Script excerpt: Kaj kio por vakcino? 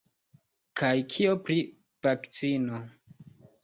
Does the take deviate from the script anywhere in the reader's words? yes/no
yes